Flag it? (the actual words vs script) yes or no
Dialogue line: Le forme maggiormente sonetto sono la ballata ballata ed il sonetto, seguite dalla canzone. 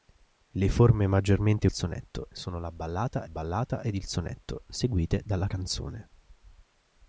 no